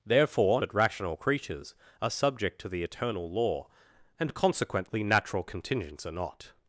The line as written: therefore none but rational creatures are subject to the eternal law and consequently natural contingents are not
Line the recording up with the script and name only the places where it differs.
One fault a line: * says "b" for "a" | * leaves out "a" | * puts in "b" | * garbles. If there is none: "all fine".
* leaves out "none"